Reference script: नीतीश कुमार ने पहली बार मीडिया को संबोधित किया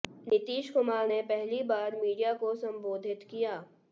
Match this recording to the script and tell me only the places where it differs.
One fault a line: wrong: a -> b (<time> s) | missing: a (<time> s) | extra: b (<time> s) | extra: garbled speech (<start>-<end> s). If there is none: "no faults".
no faults